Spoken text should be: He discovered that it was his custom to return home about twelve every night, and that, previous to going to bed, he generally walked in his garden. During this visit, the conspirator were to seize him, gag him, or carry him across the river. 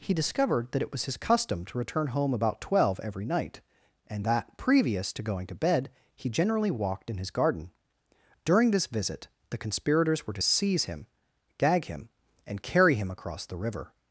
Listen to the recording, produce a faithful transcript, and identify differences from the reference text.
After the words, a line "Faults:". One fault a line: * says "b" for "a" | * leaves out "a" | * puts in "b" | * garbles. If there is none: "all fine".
He discovered that it was his custom to return home about twelve every night, and that, previous to going to bed, he generally walked in his garden. During this visit, the conspirators were to seize him, gag him, and carry him across the river.
Faults:
* says "conspirators" for "conspirator"
* says "and" for "or"